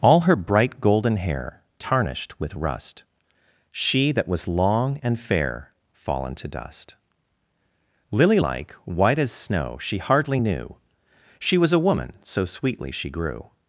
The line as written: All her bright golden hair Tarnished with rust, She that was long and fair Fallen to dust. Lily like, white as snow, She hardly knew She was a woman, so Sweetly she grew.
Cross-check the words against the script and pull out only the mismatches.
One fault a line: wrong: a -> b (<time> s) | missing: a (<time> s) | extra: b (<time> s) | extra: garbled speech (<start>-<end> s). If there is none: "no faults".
no faults